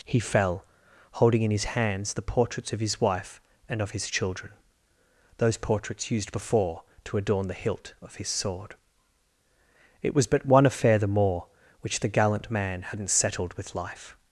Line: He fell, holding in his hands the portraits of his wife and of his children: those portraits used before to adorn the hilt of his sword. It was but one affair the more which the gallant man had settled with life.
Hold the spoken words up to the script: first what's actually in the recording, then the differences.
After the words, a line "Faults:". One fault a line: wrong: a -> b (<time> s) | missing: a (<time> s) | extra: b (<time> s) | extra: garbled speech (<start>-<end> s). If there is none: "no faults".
He fell, holding in his hands the portraits of his wife and of his children: those portraits used before to adorn the hilt of his sword. It was but one affair the more which the gallant man hadn't settled with life.
Faults:
wrong: had -> hadn't (12.8 s)